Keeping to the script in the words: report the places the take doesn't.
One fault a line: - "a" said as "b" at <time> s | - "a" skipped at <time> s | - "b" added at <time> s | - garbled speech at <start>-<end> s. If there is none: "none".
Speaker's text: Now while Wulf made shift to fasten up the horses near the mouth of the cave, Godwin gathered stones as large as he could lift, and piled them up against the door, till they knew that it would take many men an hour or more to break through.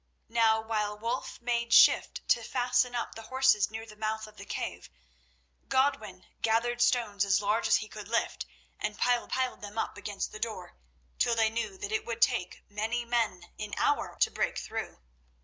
- "piled" added at 9.3 s
- "or more" skipped at 14.2 s